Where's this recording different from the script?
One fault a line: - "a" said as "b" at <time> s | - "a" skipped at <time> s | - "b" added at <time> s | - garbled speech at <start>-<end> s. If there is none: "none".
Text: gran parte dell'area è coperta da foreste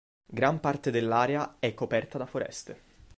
none